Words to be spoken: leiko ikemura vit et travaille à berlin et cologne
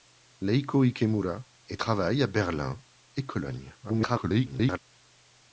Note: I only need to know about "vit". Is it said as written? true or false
false